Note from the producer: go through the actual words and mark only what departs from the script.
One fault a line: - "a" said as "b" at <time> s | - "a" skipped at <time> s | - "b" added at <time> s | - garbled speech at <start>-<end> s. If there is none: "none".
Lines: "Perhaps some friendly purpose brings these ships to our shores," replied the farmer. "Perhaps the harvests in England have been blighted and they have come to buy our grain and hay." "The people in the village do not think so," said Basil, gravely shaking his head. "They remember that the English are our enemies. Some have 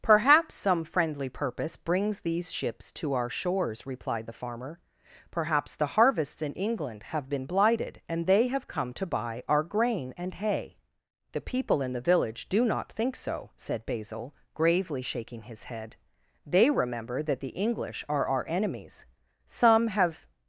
none